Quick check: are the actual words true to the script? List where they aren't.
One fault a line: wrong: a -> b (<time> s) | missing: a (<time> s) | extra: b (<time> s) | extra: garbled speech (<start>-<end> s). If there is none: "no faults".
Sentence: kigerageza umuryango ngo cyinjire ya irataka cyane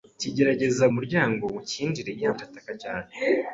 no faults